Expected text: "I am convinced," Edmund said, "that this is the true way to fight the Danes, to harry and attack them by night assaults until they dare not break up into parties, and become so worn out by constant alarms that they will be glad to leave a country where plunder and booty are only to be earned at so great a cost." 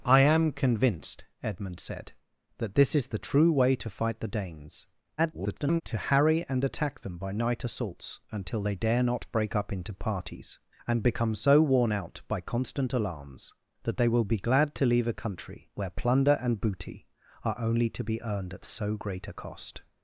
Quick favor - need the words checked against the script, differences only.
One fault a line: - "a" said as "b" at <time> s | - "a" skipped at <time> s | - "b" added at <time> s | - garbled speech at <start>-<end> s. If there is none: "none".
- garbled speech at 5.2-5.8 s